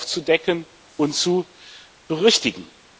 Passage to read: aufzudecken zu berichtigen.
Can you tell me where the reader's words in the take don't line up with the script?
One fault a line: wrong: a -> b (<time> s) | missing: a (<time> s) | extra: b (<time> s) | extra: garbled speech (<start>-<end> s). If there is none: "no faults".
extra: und (1.0 s)